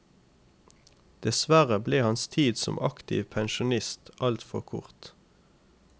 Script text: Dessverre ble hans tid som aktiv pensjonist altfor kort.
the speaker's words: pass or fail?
pass